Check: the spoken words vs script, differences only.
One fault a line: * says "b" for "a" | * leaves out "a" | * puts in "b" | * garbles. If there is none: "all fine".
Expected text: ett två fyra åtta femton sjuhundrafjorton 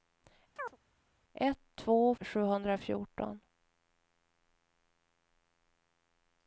* leaves out "fyra åtta femton"